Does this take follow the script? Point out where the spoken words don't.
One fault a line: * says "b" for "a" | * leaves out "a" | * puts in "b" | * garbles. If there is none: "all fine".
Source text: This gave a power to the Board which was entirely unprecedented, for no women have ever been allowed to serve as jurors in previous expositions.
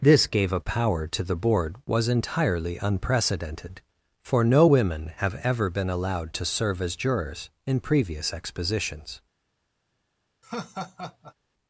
* leaves out "which"